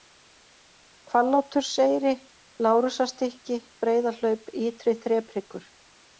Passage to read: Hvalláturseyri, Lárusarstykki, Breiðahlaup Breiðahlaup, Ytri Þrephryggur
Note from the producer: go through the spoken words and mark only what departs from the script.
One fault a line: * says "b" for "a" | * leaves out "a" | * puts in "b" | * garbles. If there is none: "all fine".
* leaves out "Breiðahlaup"